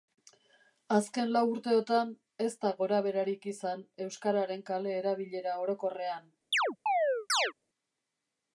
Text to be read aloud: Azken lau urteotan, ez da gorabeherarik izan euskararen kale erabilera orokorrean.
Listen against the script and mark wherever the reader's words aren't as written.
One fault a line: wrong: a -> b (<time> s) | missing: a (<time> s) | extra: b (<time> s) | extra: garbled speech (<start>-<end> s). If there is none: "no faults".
no faults